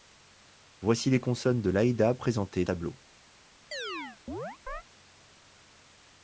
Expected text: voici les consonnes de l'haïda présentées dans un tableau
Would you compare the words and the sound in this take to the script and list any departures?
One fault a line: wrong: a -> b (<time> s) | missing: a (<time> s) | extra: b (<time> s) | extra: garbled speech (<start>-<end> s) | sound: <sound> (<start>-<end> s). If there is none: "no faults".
missing: dans (2.6 s)
sound: chirp (3.7-4.8 s)